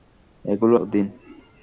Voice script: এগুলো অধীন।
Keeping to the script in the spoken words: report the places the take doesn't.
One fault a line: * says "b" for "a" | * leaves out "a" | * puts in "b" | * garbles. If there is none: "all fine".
all fine